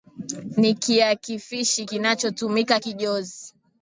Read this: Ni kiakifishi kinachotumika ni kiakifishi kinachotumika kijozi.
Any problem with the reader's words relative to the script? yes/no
yes